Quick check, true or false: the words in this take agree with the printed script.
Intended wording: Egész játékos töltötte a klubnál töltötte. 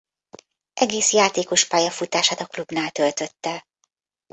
false